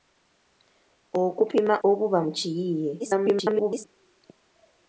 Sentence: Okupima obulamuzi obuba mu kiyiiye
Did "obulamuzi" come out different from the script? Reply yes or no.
yes